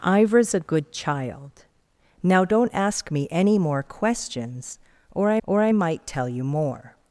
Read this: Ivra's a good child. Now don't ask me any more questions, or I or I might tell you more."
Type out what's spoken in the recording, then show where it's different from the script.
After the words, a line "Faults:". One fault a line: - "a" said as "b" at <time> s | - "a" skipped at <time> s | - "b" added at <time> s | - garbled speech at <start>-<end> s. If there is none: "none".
Ivra's a good child. Now don't ask me any more questions, or I or I might tell you more."
Faults:
none